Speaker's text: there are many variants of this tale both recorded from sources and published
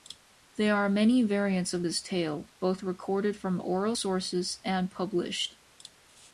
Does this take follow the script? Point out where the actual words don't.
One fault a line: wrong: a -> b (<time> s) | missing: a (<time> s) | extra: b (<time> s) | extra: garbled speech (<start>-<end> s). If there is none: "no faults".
extra: oral (3.6 s)